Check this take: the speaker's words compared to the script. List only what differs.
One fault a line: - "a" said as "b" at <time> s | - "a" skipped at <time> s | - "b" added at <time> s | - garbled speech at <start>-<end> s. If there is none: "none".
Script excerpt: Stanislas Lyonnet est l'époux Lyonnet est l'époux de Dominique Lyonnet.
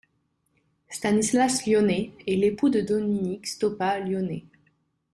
- "Lyonnet est l'époux" skipped at 2.7 s
- "Stoppa" added at 3.5 s